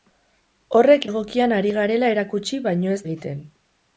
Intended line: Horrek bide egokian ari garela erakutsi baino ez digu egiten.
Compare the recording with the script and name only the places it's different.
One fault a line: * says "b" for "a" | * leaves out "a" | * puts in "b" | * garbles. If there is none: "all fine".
* leaves out "bide"
* leaves out "digu"